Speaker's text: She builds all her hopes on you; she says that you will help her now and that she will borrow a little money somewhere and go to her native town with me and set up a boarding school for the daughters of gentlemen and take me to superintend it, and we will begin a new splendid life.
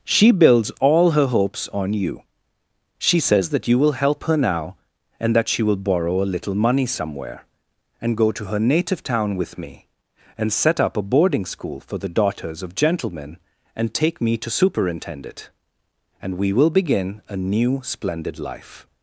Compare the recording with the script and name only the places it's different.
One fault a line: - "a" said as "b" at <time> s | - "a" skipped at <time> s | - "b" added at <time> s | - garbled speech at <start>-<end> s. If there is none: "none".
none